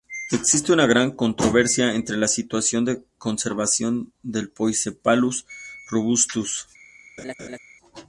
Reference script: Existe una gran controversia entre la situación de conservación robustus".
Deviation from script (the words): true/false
true